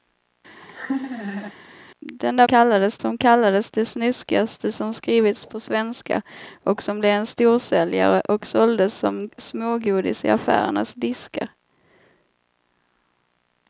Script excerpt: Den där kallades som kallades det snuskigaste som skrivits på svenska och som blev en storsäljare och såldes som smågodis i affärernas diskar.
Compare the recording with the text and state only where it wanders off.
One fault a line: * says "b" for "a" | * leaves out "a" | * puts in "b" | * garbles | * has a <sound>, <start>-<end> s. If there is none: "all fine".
* has a laugh, 0.6-1.5 s